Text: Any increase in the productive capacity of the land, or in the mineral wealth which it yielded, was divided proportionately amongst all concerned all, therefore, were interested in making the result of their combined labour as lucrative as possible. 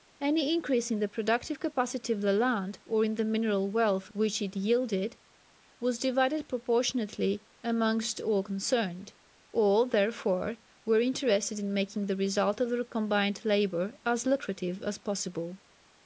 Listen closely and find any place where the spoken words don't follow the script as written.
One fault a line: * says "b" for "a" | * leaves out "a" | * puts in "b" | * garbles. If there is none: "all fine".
all fine